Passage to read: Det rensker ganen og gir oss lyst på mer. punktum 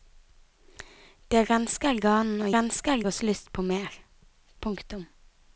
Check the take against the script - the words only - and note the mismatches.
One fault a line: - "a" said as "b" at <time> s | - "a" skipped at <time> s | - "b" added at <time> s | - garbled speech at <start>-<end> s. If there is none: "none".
- "gir" said as "rensker" at 2.5 s